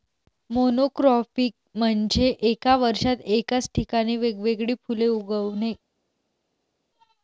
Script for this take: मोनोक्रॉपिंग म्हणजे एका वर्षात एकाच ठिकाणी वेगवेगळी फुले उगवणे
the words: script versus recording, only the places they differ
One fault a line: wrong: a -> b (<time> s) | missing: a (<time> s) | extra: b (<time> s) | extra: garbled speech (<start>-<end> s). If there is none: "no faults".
no faults